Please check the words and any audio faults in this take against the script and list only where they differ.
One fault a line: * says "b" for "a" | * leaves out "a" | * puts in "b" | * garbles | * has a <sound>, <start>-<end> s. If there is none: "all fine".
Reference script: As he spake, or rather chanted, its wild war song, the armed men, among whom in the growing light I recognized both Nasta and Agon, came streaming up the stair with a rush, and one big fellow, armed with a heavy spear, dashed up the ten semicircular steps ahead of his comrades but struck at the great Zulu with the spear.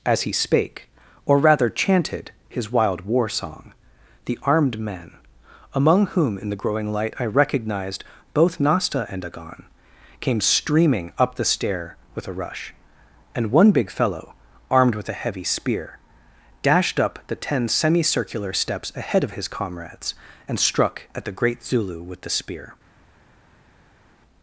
* says "his" for "its"
* says "and" for "but"